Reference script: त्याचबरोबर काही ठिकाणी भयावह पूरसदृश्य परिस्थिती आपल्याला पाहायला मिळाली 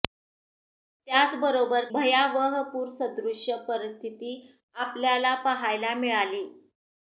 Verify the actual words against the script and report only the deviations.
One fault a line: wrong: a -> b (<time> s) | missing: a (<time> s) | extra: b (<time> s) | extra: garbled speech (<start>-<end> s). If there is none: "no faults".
missing: काही ठिकाणी (1.9 s)